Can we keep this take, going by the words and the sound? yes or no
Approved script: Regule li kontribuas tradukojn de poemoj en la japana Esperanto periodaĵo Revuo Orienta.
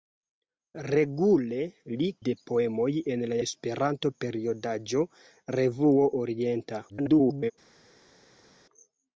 no